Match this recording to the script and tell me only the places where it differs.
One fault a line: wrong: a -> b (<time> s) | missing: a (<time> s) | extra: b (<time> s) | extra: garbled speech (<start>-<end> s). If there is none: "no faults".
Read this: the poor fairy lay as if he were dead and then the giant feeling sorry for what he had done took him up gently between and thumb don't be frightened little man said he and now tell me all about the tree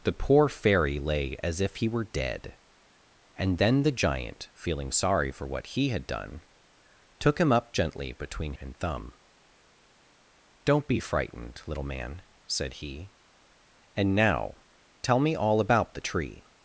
no faults